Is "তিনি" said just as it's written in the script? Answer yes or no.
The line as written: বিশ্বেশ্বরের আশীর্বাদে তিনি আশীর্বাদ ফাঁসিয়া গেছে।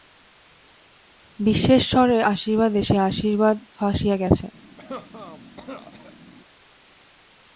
no